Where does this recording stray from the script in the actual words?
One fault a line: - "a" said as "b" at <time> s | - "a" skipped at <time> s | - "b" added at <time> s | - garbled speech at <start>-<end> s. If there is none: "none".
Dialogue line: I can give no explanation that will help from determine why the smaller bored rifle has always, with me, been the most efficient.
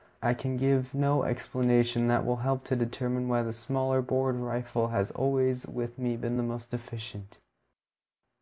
- "from" said as "to" at 2.6 s